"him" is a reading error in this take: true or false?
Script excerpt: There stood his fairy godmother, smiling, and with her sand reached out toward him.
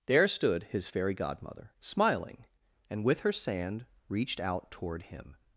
false